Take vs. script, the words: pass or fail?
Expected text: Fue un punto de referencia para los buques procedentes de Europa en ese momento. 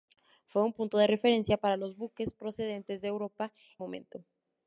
fail